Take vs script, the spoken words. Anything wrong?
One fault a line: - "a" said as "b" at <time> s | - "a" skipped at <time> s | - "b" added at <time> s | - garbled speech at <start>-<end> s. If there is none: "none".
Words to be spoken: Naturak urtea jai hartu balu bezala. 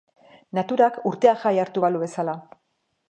none